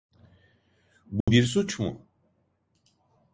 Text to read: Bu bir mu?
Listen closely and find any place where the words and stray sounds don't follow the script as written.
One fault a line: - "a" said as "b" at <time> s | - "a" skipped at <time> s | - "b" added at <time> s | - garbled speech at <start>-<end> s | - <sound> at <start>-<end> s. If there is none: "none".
- dropout at 1.2-1.3 s
- "suç" added at 1.4 s